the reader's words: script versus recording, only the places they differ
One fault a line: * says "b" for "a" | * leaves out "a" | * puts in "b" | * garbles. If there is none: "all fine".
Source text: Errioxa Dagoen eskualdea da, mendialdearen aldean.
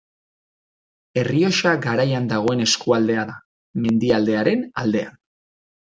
* puts in "Garaian"